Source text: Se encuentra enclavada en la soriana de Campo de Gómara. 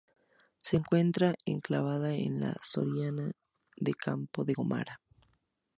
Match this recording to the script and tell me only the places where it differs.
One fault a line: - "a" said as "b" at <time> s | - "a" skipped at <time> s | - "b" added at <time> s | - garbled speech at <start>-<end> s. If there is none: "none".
none